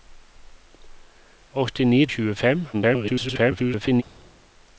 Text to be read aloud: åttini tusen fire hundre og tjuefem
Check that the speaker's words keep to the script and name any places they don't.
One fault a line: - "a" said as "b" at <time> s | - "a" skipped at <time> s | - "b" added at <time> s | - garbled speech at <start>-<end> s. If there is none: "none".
- "tusen fire hundre" skipped at 2.0 s
- garbled speech at 2.7-4.0 s